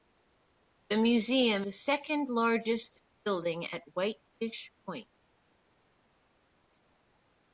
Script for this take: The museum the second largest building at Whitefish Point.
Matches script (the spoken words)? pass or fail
pass